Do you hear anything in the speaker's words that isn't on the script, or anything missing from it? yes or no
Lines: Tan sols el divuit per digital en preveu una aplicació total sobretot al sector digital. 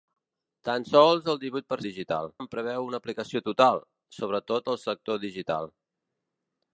no